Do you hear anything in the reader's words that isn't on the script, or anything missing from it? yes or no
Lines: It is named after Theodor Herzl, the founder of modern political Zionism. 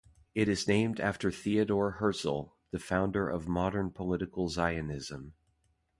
no